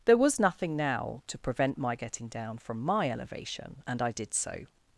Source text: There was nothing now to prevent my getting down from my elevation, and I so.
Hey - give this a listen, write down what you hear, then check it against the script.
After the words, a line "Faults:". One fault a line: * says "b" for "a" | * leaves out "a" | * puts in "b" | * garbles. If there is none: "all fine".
There was nothing now to prevent my getting down from my elevation, and I did so.
Faults:
* puts in "did"